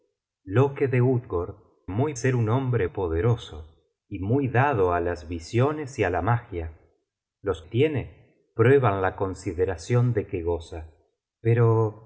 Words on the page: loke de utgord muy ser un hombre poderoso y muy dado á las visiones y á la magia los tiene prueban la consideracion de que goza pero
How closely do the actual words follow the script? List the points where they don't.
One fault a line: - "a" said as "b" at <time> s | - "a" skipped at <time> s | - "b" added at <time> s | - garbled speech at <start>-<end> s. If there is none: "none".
none